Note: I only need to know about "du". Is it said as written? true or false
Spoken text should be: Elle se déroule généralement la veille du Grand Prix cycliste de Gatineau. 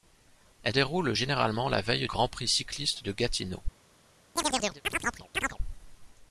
false